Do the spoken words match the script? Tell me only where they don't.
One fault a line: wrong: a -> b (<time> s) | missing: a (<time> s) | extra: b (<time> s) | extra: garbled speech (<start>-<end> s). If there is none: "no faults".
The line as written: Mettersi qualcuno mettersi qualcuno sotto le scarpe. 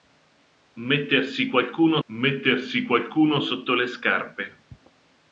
no faults